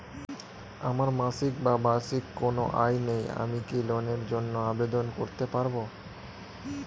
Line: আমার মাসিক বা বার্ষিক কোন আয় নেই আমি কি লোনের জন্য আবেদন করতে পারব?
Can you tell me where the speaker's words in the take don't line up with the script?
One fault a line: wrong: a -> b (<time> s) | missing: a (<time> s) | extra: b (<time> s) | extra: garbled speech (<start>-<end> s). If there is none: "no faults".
no faults